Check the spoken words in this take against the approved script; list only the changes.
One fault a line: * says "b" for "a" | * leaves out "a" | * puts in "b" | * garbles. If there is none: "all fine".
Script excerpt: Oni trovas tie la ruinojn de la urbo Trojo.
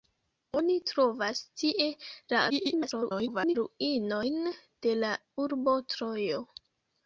* garbles